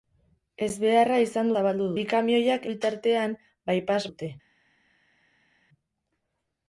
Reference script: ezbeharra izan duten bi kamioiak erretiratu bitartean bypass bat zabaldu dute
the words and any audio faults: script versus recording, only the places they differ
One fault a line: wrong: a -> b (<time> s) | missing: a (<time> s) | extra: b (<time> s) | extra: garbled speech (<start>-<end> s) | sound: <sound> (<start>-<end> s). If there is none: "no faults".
wrong: duten -> zabaldu (1.6 s)
missing: erretiratu (2.6 s)
missing: bat zabaldu (4.0 s)